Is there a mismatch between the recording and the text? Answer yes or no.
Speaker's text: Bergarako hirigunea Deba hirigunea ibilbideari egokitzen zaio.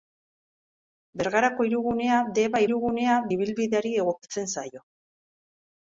no